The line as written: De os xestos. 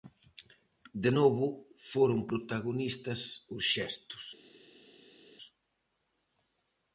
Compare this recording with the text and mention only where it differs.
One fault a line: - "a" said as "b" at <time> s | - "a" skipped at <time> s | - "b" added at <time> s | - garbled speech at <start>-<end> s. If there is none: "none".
- "novo foron protagonistas" added at 1.2 s